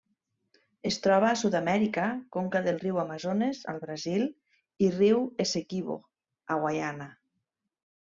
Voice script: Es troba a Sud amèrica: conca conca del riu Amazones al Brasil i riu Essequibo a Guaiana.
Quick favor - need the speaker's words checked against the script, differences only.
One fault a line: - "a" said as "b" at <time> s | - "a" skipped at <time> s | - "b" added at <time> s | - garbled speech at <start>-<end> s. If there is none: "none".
- "conca" skipped at 2.6 s